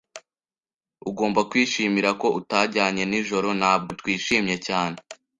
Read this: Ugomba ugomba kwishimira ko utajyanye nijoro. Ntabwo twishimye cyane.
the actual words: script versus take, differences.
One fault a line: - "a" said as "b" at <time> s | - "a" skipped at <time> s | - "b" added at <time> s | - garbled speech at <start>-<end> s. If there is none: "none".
- "ugomba" skipped at 1.4 s